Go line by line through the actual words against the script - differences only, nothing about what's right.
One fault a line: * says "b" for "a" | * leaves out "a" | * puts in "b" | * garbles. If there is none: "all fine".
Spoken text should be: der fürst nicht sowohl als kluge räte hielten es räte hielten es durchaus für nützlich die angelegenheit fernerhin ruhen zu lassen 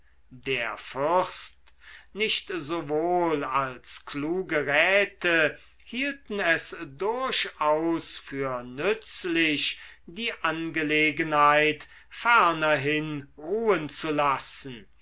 * leaves out "räte hielten es"